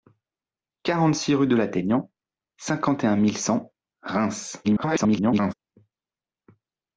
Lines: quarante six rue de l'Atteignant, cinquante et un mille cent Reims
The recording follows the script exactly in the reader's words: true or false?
false